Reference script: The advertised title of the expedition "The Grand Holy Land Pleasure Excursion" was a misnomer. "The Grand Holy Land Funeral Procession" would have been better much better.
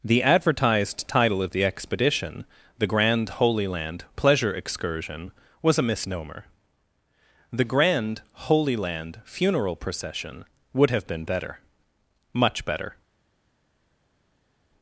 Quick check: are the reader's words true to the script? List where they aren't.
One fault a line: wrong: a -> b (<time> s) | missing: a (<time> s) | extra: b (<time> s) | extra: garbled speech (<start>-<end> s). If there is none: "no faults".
no faults